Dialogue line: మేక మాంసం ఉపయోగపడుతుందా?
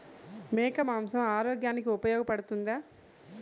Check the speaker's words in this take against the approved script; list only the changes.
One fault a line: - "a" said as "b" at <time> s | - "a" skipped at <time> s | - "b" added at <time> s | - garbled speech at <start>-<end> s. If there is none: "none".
- "ఆరోగ్యానికి" added at 1.3 s